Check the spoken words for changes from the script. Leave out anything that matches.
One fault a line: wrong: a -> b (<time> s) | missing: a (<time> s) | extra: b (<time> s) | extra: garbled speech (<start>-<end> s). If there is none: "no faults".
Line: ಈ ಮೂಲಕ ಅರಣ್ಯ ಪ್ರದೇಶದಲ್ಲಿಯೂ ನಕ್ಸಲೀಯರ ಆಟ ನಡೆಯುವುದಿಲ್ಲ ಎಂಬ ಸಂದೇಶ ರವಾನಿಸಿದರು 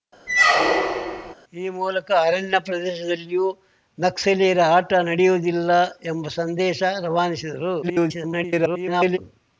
extra: garbled speech (7.8-9.2 s)